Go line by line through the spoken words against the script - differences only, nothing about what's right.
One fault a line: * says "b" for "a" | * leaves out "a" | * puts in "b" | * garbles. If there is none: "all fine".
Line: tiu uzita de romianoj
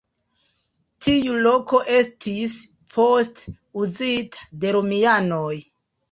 * puts in "loko estis poste"